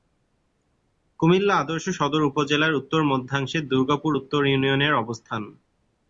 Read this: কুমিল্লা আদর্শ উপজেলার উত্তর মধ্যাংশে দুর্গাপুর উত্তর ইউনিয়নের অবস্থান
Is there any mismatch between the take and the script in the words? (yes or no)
yes